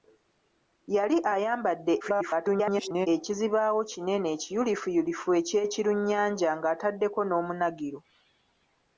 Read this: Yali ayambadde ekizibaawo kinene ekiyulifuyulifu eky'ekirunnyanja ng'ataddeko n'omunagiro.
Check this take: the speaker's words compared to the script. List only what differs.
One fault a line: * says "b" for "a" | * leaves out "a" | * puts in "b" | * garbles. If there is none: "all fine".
* garbles